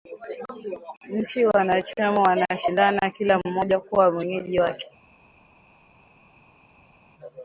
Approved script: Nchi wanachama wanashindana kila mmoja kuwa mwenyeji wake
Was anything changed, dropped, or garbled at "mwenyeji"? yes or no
no